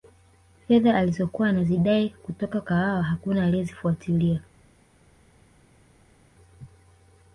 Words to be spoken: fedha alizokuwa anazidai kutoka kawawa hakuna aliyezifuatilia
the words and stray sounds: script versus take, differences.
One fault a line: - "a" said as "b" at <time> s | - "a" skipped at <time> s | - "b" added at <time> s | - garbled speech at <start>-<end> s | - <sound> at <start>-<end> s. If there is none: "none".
none